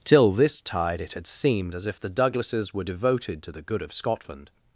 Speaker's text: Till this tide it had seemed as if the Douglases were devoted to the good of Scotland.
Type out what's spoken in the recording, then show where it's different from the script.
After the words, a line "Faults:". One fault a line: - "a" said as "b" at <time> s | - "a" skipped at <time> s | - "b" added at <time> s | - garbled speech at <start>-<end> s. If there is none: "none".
Till this tide it had seemed as if the Douglases were devoted to the good of Scotland.
Faults:
none